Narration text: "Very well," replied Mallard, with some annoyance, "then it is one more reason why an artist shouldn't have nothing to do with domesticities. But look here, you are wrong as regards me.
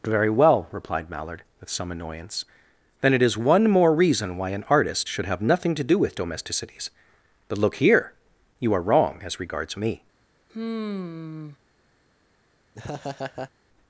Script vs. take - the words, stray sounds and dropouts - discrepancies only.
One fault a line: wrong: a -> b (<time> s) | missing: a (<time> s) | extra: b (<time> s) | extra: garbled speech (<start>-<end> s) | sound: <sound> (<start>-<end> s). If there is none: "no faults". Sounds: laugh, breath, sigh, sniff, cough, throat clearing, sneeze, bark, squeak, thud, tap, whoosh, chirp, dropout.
wrong: shouldn't -> should (5.1 s)
sound: sigh (10.5-11.6 s)
sound: laugh (12.7-13.5 s)